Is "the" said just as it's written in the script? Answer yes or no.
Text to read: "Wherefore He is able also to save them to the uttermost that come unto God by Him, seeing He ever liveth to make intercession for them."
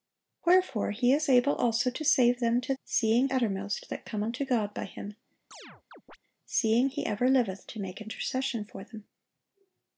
no